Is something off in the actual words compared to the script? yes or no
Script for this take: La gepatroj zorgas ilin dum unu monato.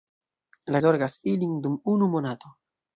yes